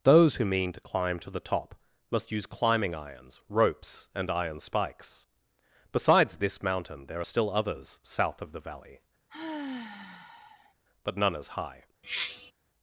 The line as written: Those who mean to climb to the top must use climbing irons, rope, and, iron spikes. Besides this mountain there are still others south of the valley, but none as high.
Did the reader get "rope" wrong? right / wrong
wrong